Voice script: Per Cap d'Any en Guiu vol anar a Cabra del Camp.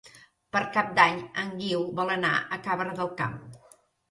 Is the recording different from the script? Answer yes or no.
no